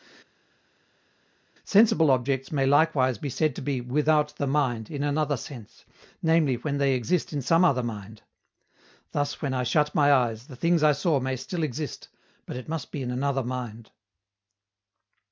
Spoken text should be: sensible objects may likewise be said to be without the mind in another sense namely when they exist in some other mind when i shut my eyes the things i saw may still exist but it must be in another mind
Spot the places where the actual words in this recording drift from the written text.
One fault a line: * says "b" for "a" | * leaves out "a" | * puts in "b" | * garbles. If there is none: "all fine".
* puts in "thus"